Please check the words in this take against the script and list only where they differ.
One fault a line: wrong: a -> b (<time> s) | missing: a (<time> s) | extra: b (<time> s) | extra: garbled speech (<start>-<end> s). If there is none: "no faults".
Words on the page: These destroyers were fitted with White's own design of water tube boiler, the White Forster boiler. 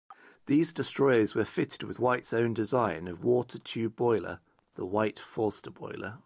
no faults